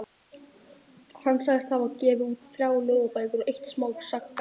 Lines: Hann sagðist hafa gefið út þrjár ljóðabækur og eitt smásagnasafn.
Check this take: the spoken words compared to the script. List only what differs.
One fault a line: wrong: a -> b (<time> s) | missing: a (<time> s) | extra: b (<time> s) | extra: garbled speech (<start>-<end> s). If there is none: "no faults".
no faults